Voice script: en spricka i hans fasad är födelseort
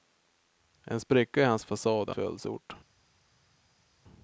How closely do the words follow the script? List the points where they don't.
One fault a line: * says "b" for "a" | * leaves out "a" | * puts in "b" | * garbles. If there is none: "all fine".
all fine